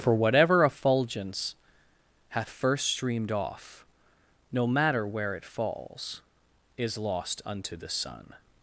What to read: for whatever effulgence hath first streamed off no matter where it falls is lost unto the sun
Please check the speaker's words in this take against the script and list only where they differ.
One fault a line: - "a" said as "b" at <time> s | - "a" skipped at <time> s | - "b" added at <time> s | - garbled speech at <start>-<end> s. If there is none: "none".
none